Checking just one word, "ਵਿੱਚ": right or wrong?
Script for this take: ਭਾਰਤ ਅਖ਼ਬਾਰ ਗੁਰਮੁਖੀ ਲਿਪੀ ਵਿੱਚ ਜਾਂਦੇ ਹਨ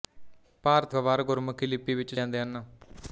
right